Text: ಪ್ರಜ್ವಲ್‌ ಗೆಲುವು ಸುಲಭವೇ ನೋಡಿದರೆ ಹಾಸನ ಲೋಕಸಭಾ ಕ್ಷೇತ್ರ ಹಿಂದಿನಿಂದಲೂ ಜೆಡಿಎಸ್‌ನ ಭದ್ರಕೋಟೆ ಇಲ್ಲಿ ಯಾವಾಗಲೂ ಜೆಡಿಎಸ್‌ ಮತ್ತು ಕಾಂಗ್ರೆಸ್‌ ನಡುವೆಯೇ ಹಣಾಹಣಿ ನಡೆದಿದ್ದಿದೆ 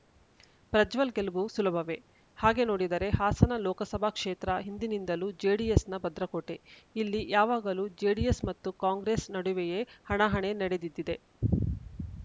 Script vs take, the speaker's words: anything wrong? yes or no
yes